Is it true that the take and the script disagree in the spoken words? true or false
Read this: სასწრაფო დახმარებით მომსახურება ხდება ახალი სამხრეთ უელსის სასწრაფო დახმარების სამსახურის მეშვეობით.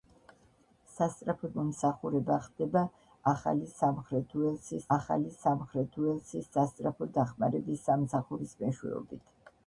true